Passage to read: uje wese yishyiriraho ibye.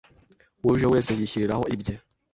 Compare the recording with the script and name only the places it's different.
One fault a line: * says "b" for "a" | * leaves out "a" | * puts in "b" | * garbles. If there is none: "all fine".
all fine